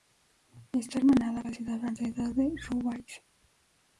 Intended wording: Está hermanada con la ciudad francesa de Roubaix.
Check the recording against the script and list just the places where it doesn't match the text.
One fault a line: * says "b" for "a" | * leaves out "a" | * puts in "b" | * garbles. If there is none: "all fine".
* leaves out "con"